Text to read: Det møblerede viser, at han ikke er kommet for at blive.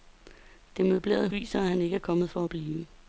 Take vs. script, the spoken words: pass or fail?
pass